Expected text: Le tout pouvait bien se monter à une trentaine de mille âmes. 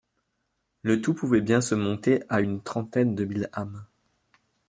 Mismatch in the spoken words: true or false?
false